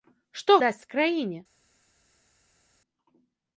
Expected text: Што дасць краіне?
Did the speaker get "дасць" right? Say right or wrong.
right